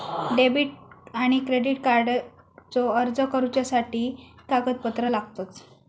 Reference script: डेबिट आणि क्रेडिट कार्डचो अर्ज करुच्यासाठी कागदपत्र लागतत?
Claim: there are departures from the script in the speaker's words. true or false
false